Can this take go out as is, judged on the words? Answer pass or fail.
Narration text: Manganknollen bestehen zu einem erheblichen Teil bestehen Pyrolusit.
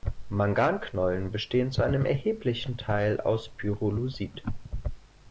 fail